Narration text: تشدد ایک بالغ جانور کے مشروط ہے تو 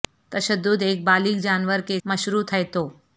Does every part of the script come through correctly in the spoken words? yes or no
yes